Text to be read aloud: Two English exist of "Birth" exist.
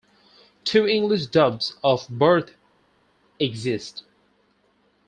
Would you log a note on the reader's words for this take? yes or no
yes